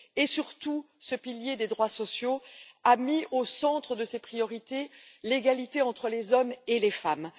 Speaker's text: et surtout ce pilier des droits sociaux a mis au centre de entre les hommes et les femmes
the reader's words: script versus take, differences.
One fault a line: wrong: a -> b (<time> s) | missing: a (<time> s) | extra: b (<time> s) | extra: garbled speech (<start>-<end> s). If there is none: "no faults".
extra: ses priorités l'égalité (4.1 s)